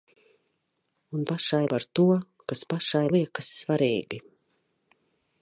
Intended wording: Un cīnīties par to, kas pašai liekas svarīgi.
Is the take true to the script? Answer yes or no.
no